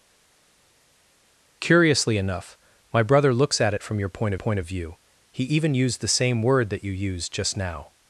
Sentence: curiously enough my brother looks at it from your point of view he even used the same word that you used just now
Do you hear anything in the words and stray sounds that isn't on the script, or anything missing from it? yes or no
yes